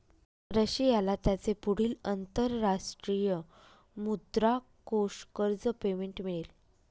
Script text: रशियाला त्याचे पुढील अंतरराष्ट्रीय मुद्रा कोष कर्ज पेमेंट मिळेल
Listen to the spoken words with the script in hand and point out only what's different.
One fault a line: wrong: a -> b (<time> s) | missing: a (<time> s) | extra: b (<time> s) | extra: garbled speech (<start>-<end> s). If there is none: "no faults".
no faults